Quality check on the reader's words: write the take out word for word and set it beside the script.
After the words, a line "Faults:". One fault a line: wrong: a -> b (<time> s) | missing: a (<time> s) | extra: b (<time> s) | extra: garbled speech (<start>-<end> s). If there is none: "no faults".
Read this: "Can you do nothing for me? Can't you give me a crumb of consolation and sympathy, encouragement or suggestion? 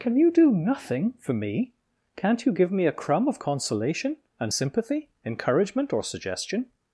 "Can you do nothing for me? Can't you give me a crumb of consolation and sympathy, encouragement or suggestion?
Faults:
no faults